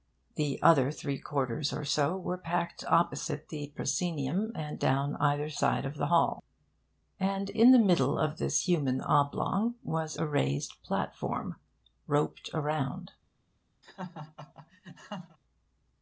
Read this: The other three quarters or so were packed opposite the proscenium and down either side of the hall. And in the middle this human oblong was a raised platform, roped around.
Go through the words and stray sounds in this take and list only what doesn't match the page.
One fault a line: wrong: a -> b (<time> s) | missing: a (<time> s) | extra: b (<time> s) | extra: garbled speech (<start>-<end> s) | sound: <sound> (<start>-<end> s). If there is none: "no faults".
extra: of (8.2 s)
sound: laugh (13.8-15.4 s)